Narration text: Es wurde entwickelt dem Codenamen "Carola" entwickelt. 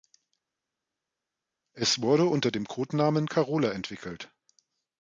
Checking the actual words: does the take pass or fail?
fail